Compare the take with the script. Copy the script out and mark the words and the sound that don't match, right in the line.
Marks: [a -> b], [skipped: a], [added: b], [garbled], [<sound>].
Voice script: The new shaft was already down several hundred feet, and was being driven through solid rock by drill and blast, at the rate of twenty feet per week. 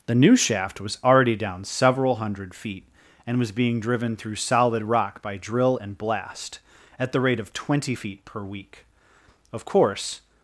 The new shaft was already down several hundred feet, and was being driven through solid rock by drill and blast, at the rate of twenty feet per week. [added: Of course]